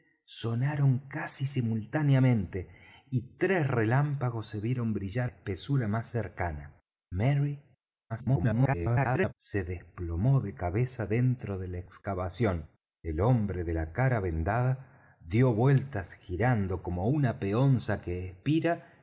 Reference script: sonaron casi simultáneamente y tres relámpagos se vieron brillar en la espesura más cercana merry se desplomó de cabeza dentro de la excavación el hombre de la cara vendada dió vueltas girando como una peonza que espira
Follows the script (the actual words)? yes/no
no